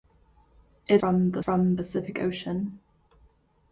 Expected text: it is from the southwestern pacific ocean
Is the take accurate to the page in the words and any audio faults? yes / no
no